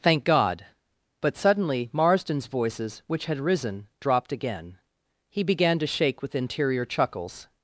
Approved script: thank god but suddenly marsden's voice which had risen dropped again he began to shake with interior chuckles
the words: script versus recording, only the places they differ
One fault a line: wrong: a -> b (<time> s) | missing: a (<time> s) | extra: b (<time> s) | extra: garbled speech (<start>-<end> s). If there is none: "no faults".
wrong: voice -> voices (2.5 s)